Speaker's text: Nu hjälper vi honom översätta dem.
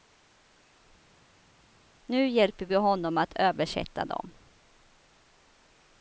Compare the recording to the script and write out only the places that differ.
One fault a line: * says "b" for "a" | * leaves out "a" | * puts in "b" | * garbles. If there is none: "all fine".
* puts in "att"